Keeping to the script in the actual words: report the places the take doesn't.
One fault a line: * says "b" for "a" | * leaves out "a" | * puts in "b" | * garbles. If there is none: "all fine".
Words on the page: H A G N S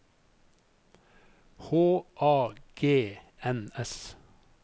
all fine